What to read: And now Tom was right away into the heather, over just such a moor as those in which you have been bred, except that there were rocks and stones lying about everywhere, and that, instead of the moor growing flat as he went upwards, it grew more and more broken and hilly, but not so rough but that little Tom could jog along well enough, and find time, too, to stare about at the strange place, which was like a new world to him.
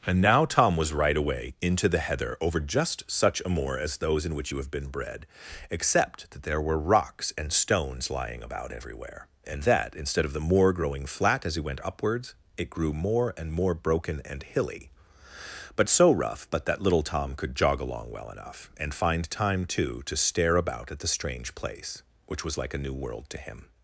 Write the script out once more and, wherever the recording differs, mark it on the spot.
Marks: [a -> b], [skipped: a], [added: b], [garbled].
And now Tom was right away into the heather, over just such a moor as those in which you have been bred, except that there were rocks and stones lying about everywhere, and that, instead of the moor growing flat as he went upwards, it grew more and more broken and hilly, but [skipped: not] so rough but that little Tom could jog along well enough, and find time, too, to stare about at the strange place, which was like a new world to him.